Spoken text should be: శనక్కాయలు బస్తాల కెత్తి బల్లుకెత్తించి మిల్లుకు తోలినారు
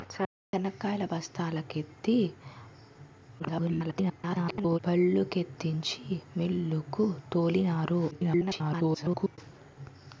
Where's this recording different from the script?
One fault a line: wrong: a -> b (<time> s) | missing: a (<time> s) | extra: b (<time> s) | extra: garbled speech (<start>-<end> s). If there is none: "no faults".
extra: garbled speech (3.4-4.8 s)
extra: garbled speech (8.1-9.4 s)